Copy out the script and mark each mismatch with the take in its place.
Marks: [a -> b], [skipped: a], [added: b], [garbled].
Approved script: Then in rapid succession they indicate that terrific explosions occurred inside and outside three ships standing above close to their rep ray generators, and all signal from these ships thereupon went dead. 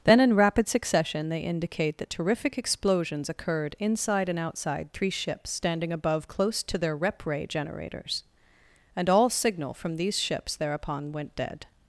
Then in rapid succession they indicate that terrific explosions occurred inside and outside three ships standing above close to their rep ray generators, and all signal from these ships thereupon went dead.